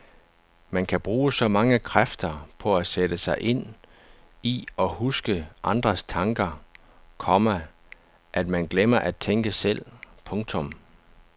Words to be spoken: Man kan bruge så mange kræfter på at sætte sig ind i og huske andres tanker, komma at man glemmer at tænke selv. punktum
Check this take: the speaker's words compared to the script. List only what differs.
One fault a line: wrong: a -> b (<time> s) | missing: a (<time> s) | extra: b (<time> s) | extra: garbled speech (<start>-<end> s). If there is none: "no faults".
no faults